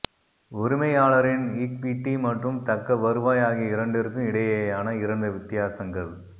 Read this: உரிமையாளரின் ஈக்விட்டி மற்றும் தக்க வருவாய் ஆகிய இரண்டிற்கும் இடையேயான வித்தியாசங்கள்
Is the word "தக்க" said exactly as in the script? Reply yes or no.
yes